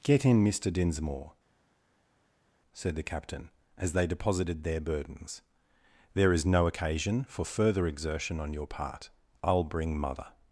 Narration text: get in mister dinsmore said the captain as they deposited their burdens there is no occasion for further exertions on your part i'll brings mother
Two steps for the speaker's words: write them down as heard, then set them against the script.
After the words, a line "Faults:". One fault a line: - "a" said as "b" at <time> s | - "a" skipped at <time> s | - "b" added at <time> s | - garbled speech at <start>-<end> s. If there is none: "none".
get in mister dinsmore said the captain as they deposited their burdens there is no occasion for further exertion on your part i'll bring mother
Faults:
- "exertions" said as "exertion" at 7.9 s
- "brings" said as "bring" at 9.6 s